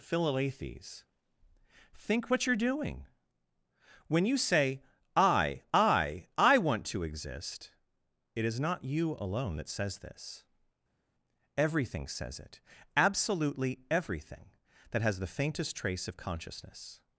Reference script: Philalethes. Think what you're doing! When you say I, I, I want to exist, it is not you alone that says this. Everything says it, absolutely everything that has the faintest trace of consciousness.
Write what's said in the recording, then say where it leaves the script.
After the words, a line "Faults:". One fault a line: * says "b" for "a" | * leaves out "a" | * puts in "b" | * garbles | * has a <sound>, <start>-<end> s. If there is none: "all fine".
Philalethes. Think what you're doing! When you say I, I, I want to exist, it is not you alone that says this. Everything says it, absolutely everything that has the faintest trace of consciousness.
Faults:
all fine